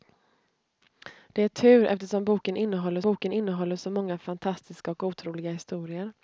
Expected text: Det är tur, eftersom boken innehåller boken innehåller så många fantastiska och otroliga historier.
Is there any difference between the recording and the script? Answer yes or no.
no